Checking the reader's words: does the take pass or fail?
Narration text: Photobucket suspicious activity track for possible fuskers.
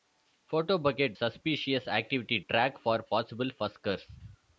pass